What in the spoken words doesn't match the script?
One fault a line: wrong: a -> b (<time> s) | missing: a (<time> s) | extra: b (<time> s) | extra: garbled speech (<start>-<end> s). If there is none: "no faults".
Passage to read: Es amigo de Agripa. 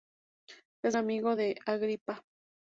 no faults